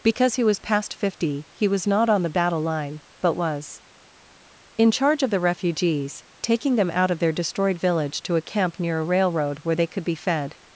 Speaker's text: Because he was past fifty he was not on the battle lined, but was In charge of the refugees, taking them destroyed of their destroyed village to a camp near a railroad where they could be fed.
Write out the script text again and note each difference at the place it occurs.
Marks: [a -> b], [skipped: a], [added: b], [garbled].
Because he was past fifty he was not on the battle [lined, -> line] but was In charge of the refugees, taking them [destroyed -> out] of their destroyed village to a camp near a railroad where they could be fed.